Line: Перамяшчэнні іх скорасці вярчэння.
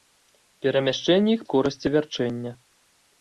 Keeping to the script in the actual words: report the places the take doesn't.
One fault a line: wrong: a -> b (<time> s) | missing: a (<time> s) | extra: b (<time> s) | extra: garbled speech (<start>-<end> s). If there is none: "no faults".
no faults